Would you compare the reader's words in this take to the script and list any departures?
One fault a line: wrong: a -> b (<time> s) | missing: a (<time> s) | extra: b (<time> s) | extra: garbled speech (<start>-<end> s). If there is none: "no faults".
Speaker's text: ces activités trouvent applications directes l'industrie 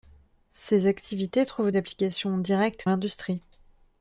no faults